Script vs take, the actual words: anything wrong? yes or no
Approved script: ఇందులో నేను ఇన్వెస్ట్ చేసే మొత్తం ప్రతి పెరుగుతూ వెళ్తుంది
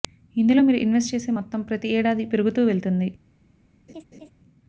yes